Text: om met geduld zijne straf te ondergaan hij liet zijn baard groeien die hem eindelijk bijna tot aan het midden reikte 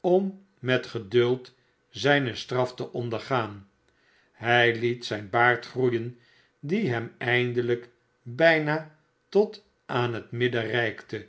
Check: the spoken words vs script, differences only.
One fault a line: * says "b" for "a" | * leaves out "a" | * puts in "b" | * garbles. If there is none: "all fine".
all fine